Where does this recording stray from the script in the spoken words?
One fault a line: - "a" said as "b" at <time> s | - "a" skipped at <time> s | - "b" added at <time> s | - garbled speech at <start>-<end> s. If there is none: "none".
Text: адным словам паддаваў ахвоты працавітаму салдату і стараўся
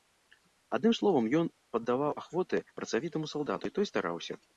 - "ён" added at 1.4 s
- "той" added at 3.8 s